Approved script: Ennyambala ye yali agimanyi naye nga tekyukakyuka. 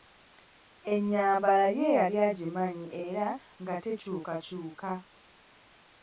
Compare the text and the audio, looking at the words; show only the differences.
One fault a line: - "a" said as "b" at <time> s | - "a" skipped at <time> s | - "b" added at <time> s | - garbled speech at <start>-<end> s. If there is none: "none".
- "naye" said as "era" at 3.0 s